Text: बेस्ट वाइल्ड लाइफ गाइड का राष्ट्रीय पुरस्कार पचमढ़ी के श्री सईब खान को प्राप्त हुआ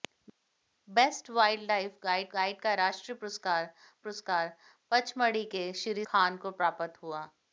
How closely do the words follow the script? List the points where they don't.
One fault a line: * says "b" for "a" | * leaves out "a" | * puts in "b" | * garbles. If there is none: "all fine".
* puts in "गाइड"
* puts in "पुरस्कार"
* leaves out "सईब"